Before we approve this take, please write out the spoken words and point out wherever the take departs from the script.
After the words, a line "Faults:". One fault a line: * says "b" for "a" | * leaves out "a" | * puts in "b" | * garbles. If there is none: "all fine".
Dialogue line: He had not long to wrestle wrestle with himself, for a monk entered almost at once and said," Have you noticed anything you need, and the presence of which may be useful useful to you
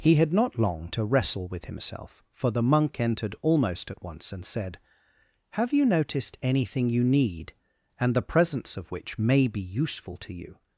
He had not long to wrestle with himself, for the monk entered almost at once and said," Have you noticed anything you need, and the presence of which may be useful to you
Faults:
* leaves out "wrestle"
* says "the" for "a"
* leaves out "useful"